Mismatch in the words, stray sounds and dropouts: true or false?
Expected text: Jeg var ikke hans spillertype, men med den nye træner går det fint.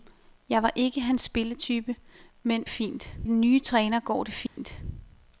true